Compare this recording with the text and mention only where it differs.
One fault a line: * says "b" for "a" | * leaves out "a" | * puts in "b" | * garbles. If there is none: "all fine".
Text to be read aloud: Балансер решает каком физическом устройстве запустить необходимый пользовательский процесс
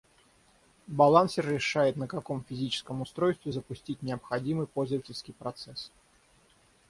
* puts in "на"